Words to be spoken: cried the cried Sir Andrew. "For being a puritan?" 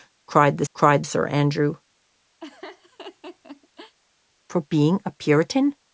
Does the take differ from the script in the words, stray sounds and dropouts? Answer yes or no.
yes